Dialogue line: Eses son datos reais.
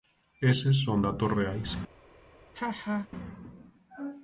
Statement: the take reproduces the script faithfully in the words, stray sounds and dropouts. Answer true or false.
false